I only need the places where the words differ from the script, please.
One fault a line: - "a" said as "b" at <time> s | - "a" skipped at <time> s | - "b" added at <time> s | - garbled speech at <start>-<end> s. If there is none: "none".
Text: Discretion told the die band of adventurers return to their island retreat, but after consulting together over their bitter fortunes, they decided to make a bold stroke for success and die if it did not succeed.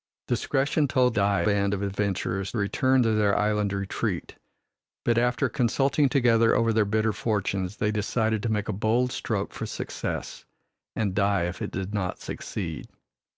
none